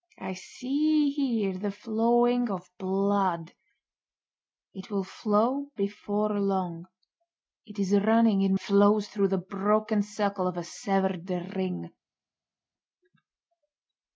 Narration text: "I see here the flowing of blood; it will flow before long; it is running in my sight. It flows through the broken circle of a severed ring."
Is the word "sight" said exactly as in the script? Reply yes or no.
no